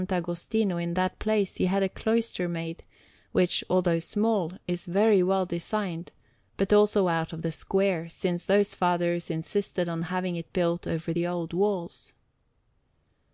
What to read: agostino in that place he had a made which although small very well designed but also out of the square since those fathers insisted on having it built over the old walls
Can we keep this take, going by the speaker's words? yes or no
no